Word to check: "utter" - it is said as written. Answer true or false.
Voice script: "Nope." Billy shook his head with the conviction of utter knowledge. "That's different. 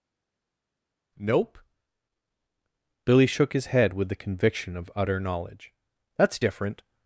true